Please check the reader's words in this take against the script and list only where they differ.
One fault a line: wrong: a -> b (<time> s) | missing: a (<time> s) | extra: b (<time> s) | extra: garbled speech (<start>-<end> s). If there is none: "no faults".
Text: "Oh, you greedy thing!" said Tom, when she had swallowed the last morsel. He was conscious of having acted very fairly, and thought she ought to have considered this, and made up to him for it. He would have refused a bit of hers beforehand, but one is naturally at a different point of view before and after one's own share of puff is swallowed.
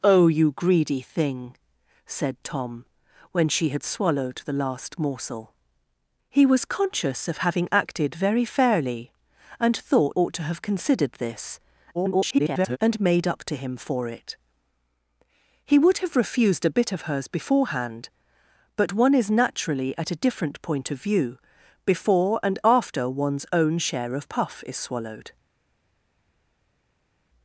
missing: she (10.2 s)
extra: garbled speech (11.9-12.8 s)